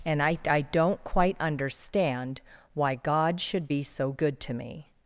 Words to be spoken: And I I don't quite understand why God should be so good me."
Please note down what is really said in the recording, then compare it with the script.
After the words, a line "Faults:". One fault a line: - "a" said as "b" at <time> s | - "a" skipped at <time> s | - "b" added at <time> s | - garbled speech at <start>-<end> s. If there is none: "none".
And I I don't quite understand why God should be so good to me."
Faults:
- "to" added at 4.4 s